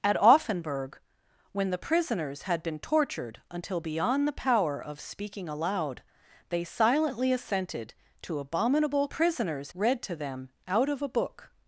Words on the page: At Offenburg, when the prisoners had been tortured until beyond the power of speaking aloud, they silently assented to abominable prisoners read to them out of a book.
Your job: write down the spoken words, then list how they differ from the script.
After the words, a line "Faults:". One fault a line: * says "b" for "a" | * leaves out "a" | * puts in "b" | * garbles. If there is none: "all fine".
At Offenburg, when the prisoners had been tortured until beyond the power of speaking aloud, they silently assented to abominable prisoners read to them out of a book.
Faults:
all fine